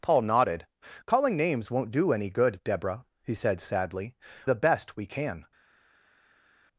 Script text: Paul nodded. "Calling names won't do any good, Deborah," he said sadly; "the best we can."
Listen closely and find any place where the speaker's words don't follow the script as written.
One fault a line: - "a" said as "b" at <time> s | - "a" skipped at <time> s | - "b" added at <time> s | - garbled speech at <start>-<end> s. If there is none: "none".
none